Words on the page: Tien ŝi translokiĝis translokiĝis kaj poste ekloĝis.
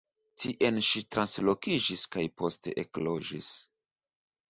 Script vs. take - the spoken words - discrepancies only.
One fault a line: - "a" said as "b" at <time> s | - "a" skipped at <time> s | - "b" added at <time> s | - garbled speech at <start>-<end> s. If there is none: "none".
- "translokiĝis" skipped at 2.0 s